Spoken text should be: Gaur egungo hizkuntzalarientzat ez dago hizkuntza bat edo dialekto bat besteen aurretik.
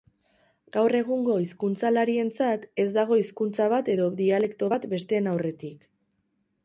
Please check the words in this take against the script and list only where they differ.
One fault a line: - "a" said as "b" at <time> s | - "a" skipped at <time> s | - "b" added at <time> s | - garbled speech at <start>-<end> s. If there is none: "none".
none